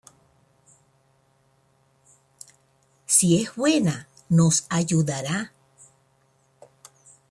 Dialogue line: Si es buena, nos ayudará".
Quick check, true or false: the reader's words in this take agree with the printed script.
true